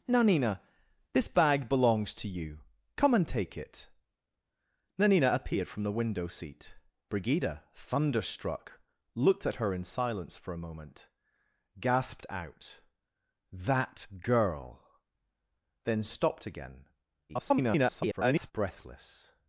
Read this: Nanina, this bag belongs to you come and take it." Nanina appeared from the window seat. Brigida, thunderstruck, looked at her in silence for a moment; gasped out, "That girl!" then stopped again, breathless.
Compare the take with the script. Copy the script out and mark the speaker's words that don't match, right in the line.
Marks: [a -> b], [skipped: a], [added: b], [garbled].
Nanina, this bag belongs to you come and take it." Nanina appeared from the window seat. Brigida, thunderstruck, looked at her in silence for a moment; gasped out, "That girl!" then stopped again, [garbled] breathless.